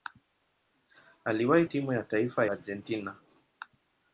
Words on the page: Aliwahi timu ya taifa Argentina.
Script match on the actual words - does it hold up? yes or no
yes